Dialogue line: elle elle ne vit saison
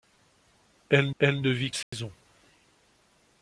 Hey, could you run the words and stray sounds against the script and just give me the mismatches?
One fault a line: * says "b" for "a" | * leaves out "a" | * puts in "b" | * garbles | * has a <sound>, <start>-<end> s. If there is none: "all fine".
* has a dropout, 1.8-1.9 s